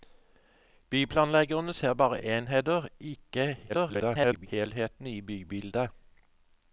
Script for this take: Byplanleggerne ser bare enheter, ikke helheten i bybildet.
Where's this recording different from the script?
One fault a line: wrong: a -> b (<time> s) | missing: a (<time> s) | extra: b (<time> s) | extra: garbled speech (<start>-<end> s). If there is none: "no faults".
extra: garbled speech (3.7-4.5 s)